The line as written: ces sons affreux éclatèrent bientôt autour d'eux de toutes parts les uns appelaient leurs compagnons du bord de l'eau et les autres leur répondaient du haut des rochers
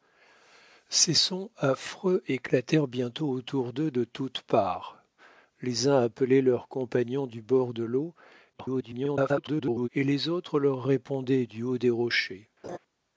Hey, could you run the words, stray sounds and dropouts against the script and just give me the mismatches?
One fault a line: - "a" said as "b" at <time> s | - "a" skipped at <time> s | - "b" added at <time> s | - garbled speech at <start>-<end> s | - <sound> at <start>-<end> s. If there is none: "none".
- garbled speech at 8.5-9.9 s
- laugh at 12.6-12.8 s